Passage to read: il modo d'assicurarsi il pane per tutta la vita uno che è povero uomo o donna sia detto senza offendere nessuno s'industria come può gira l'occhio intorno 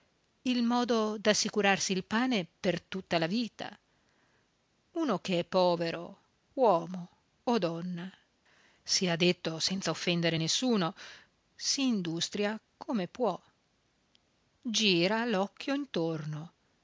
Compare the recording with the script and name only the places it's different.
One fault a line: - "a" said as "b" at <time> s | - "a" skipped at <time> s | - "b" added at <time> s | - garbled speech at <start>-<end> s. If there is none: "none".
none